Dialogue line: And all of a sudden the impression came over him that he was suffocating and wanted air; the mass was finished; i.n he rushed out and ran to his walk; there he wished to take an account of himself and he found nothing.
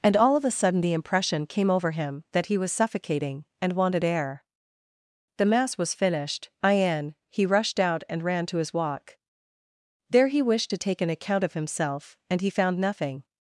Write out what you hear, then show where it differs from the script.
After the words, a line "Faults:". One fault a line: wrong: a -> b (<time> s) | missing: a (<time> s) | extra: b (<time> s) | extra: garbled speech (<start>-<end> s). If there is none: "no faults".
And all of a sudden the impression came over him that he was suffocating and wanted air; the mass was finished; i.n he rushed out and ran to his walk; there he wished to take an account of himself and he found nothing.
Faults:
no faults